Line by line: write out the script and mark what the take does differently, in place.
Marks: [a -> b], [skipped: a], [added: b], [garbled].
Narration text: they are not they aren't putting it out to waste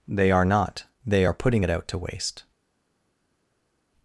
they are not they [aren't -> are] putting it out to waste